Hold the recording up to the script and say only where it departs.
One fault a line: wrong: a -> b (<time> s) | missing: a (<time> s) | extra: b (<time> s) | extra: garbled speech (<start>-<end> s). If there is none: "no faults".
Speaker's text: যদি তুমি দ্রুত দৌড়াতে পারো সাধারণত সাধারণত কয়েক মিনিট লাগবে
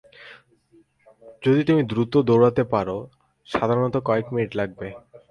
missing: সাধারণত (4.0 s)